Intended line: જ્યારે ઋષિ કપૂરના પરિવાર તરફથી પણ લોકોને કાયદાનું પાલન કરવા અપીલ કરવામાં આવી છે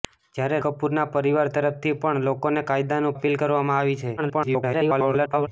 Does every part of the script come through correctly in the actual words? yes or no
no